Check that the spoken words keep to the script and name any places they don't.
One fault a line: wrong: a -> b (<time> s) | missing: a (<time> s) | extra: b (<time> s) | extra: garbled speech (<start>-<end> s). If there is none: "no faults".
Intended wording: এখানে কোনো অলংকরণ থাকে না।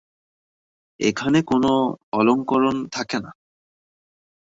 no faults